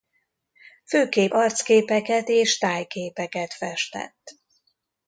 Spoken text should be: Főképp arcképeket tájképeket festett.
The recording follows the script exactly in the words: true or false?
false